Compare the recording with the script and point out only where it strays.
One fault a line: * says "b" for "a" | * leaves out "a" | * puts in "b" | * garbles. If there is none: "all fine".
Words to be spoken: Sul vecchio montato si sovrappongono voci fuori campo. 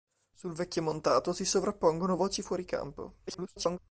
* garbles